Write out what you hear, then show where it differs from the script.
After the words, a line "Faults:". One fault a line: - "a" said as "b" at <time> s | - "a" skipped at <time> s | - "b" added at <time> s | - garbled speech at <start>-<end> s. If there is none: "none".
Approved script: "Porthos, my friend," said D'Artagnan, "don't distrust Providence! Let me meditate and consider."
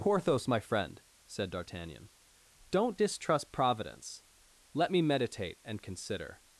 "Porthos, my friend," said D'Artagnan, "don't distrust Providence! Let me meditate and consider."
Faults:
none